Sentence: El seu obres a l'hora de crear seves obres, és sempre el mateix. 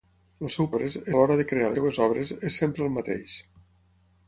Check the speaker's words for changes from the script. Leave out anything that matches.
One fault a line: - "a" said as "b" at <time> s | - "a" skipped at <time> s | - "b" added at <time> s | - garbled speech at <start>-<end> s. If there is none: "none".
none